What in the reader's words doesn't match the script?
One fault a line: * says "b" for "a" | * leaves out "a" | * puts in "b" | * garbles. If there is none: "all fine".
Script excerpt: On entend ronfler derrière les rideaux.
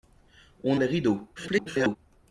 * leaves out "entend ronfler derrière"
* garbles